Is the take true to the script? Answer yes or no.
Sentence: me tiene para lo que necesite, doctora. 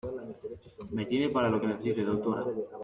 yes